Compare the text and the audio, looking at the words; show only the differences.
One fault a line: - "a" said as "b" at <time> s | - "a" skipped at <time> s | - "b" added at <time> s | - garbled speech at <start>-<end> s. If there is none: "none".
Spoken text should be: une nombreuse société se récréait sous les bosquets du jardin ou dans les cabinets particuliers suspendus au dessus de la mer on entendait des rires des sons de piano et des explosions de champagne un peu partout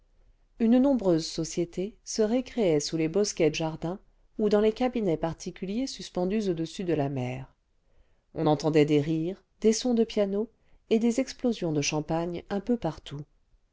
- "du" skipped at 3.5 s